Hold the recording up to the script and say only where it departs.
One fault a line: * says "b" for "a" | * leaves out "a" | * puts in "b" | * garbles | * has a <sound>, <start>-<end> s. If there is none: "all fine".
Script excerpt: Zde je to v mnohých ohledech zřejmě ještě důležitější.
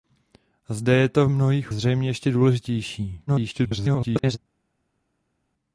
* leaves out "ohledech"
* garbles